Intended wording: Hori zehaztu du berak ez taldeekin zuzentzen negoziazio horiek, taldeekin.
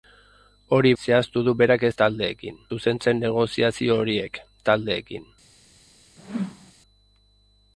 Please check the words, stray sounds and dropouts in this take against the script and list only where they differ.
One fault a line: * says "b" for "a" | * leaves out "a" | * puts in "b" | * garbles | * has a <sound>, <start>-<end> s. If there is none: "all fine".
* has a whoosh, 6.2-6.7 s